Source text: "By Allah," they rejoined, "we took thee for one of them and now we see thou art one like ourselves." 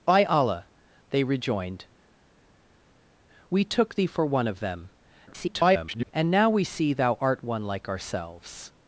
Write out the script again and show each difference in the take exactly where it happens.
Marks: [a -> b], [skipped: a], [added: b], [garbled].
"By Allah," they rejoined, "we took thee for one of them [garbled] and now we see thou art one like ourselves."